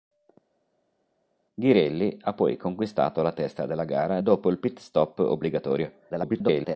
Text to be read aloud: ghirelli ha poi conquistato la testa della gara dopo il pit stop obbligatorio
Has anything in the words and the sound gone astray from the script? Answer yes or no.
yes